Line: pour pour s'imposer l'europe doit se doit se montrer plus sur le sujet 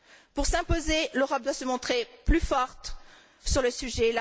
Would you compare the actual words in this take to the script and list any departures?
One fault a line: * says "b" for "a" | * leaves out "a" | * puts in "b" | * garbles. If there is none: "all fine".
* leaves out "pour"
* leaves out "doit se"
* puts in "forte"